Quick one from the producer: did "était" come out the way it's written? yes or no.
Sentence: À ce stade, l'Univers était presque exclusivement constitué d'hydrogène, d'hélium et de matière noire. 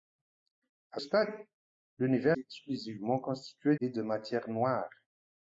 no